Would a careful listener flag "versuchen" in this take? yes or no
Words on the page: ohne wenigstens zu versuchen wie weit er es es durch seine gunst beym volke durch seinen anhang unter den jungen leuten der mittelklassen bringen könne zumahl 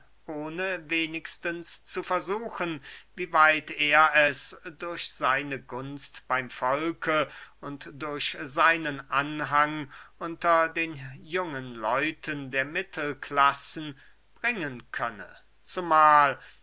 no